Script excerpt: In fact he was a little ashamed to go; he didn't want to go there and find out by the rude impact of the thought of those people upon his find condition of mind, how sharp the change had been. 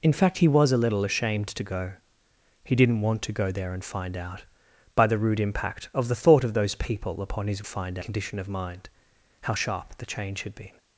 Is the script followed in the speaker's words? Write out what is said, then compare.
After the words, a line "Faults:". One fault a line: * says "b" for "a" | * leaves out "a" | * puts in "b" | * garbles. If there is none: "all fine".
In fact he was a little ashamed to go; he didn't want to go there and find out by the rude impact of the thought of those people upon his find condition of mind, how sharp the change had been.
Faults:
all fine